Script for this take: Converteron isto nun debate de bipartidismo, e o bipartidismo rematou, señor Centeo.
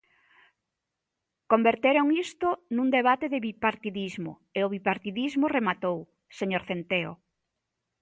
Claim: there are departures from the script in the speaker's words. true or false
false